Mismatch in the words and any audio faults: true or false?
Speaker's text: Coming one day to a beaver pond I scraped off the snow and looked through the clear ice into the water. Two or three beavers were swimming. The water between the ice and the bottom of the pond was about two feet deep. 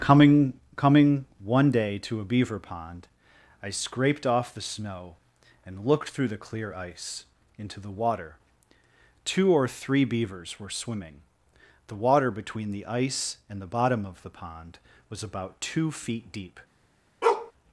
true